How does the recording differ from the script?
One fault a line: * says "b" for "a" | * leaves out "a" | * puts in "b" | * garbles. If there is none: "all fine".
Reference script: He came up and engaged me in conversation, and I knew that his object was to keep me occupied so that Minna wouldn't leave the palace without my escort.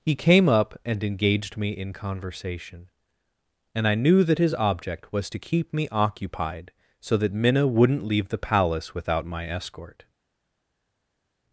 all fine